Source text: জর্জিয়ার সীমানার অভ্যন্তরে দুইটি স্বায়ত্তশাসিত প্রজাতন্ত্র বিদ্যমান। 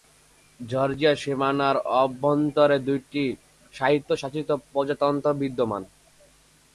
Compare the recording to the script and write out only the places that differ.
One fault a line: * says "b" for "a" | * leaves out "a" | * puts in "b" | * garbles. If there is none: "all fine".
all fine